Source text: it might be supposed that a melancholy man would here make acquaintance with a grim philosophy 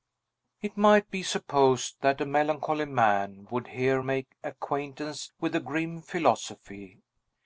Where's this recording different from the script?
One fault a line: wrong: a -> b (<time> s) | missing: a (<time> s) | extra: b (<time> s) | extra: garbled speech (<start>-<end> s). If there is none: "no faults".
no faults